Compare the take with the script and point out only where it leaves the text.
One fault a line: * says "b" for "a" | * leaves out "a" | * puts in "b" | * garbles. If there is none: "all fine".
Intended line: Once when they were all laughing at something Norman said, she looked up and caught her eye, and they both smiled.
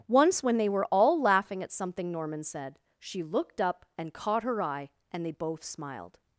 all fine